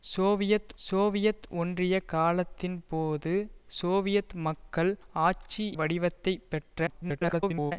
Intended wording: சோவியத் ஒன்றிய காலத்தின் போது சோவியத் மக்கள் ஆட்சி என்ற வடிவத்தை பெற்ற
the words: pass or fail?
fail